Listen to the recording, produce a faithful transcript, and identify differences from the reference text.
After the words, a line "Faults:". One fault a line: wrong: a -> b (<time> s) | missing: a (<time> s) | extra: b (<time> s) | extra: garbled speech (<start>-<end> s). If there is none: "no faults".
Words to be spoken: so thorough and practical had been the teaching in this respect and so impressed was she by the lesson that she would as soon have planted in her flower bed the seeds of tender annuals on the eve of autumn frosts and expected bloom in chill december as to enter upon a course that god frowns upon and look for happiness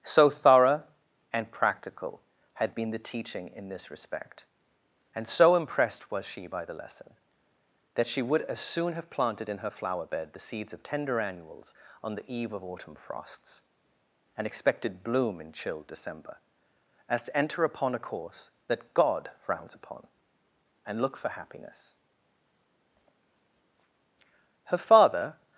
so thorough and practical had been the teaching in this respect and so impressed was she by the lesson that she would as soon have planted in her flower bed the seeds of tender annuals on the eve of autumn frosts and expected bloom in chill december as to enter upon a course that god frowns upon and look for happiness her father
Faults:
extra: her father (24.6 s)